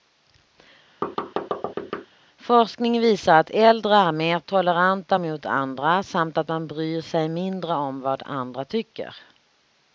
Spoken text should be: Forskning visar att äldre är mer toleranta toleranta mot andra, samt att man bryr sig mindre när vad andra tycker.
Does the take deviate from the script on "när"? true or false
true